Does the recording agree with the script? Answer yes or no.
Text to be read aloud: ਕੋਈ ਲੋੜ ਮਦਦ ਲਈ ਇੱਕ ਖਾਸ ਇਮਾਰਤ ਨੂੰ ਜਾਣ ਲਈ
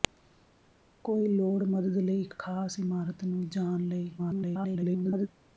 no